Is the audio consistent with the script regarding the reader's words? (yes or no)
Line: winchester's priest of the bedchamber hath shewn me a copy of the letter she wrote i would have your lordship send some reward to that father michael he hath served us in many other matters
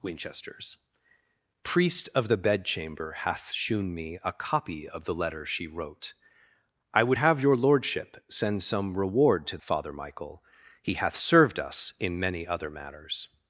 no